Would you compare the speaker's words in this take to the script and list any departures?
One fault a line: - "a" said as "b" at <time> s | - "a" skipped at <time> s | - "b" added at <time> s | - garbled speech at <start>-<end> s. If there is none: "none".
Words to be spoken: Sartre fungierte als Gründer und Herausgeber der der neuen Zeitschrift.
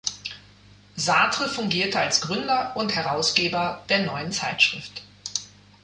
- "der" skipped at 4.0 s